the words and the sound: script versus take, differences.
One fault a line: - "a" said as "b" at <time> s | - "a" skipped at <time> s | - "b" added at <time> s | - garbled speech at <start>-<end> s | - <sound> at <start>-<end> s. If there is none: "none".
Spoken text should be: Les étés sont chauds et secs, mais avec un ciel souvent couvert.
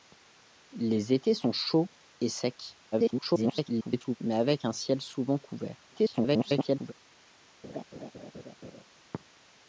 - garbled speech at 2.9-4.2 s
- garbled speech at 5.9-6.9 s
- laugh at 7.6-8.8 s